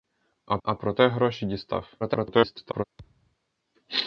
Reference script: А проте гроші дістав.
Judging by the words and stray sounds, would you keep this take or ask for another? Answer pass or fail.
fail